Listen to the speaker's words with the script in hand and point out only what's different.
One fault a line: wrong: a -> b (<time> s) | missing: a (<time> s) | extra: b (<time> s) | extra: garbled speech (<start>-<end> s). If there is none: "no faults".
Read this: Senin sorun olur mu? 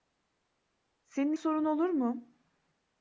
no faults